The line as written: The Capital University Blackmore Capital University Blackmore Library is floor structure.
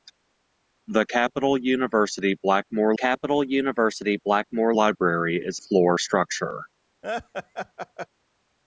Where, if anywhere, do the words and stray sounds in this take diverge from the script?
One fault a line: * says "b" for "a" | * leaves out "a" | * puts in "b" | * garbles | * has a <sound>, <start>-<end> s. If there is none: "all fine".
* has a laugh, 7.0-8.1 s